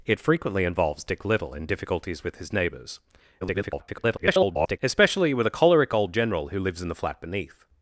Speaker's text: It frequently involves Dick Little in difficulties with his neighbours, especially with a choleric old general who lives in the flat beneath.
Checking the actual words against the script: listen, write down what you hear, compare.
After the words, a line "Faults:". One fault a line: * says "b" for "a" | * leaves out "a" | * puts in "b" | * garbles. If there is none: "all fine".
It frequently involves Dick Little in difficulties with his neighbours, [garbled] especially with a choleric old general who lives in the flat beneath.
Faults:
* garbles